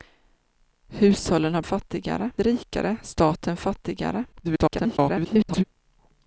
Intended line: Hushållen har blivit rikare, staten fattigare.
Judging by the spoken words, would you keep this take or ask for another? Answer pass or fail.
fail